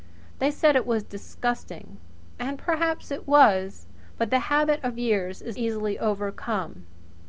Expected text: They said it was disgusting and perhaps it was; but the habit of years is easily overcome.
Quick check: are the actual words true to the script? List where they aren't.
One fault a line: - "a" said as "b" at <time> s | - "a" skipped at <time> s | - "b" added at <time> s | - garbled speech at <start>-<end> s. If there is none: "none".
none